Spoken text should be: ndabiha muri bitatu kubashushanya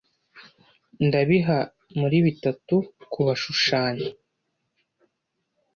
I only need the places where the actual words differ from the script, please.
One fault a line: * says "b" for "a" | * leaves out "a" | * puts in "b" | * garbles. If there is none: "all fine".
all fine